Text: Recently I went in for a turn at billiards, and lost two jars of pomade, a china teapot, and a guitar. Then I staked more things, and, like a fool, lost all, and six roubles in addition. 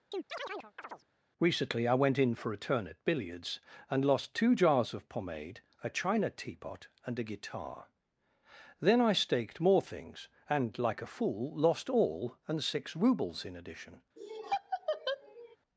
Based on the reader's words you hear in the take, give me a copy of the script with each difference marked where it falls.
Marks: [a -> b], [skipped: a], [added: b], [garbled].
Recently I went in for a turn at billiards, and lost two jars of pomade, a china teapot, and a guitar. Then I staked more things, and, like a fool, lost all, and six roubles in addition.